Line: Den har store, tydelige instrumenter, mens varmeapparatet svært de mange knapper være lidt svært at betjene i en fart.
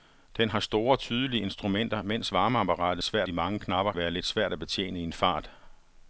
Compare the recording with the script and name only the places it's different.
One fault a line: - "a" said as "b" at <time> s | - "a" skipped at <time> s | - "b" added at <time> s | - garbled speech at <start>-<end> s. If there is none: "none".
none